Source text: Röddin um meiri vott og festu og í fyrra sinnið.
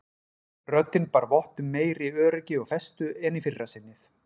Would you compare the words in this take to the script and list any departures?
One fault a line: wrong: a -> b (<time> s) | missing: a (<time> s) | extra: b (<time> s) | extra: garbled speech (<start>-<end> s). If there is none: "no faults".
extra: bar vott (1.2 s)
wrong: vott -> öryggi (2.3 s)
wrong: og -> en (3.3 s)